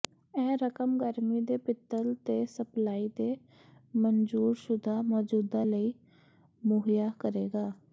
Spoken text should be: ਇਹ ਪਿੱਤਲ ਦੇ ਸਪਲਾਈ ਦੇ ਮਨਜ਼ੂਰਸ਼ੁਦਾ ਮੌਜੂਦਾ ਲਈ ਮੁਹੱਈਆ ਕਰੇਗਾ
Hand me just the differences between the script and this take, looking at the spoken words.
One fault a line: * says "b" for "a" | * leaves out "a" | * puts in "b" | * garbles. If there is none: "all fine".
* puts in "ਰਕਮ ਗਰਮੀ ਦੇ"